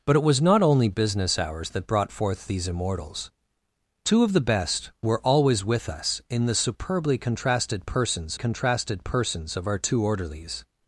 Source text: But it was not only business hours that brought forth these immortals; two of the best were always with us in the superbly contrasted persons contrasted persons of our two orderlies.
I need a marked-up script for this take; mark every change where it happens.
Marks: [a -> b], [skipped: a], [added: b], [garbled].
But it was not only business hours that brought forth these immortals; two of the best were always with us in the superbly contrasted persons contrasted persons of our two orderlies.